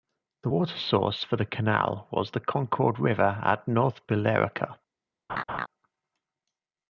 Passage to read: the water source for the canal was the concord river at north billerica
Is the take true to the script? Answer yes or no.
yes